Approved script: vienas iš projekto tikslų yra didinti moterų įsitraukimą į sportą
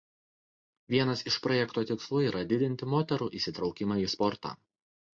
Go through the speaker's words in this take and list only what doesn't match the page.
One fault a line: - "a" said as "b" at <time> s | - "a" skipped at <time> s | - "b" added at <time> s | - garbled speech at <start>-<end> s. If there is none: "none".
none